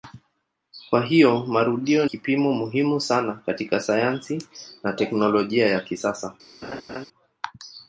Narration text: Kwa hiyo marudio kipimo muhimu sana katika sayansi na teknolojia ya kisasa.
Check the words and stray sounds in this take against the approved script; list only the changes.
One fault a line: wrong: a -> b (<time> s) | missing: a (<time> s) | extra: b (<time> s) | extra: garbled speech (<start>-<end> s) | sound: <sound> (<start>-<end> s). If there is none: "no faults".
sound: laugh (6.6-7.1 s)